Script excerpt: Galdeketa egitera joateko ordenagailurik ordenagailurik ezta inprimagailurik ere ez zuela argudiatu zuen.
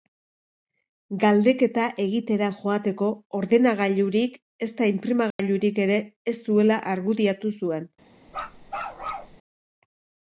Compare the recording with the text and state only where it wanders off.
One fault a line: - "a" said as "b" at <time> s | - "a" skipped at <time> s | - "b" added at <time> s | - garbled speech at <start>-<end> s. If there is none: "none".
- "ordenagailurik" skipped at 4.4 s